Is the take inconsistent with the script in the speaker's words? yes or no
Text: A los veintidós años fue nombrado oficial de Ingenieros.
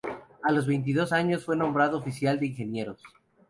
no